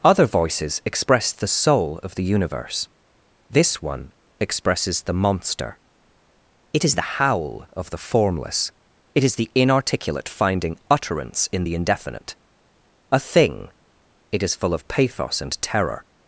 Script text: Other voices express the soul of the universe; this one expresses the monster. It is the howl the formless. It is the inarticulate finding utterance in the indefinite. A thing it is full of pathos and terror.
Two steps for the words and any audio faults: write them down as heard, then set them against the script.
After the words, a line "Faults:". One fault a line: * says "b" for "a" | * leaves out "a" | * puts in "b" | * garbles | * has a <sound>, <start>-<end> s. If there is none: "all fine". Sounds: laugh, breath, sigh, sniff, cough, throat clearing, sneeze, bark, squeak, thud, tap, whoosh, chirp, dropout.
Other voices express the soul of the universe; this one expresses the monster. It is the howl of the formless. It is the inarticulate finding utterance in the indefinite. A thing it is full of pathos and terror.
Faults:
* puts in "of"